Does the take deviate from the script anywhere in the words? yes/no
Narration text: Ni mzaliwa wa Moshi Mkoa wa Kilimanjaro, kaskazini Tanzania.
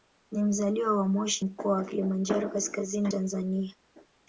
no